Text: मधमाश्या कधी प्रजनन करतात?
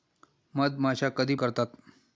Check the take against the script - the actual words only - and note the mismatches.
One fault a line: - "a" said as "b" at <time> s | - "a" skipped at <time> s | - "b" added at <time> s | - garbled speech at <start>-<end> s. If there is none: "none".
- "प्रजनन" skipped at 1.4 s